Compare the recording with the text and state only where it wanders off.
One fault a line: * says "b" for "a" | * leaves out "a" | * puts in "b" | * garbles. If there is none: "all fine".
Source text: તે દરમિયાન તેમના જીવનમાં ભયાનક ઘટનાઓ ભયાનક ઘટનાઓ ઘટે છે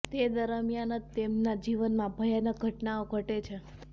* puts in "જ"
* leaves out "ભયાનક ઘટનાઓ"